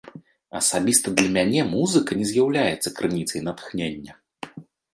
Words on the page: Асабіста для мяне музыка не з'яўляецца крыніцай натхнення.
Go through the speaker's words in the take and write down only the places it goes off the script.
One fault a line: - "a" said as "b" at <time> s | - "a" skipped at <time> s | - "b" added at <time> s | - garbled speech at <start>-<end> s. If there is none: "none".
none